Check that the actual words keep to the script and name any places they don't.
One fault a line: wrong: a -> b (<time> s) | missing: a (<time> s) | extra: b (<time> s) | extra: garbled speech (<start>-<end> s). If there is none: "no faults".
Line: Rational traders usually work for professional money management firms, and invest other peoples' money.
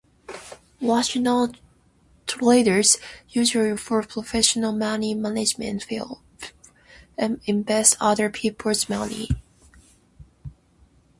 missing: work (3.7 s)